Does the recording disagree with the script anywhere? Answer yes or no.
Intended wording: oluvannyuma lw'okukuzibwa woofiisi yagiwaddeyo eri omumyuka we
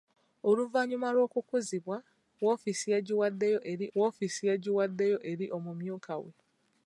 yes